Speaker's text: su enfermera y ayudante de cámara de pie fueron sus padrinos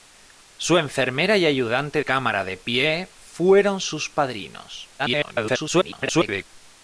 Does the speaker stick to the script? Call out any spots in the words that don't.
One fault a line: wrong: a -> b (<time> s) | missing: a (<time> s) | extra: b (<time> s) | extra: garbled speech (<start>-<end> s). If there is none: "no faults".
missing: de (2.0 s)
extra: garbled speech (5.0-6.4 s)